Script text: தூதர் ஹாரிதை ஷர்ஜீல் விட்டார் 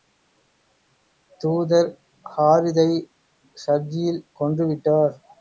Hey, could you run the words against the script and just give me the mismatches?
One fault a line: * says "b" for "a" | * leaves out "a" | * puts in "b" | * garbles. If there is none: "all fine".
* puts in "கொன்று"